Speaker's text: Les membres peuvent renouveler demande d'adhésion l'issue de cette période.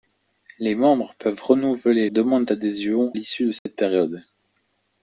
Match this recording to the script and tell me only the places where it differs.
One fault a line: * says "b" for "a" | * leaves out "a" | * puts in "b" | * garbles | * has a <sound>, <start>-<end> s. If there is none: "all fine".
* has a dropout, 3.6-3.7 s